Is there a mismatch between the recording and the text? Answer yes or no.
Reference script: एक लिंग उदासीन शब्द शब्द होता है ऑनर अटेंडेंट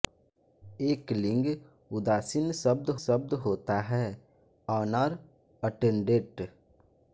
no